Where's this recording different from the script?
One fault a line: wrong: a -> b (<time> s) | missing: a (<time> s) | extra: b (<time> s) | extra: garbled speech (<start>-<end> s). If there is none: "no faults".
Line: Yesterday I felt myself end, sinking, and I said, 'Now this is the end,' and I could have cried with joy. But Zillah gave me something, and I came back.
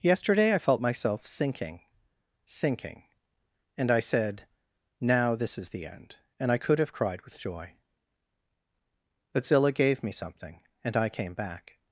wrong: end -> sinking (1.3 s)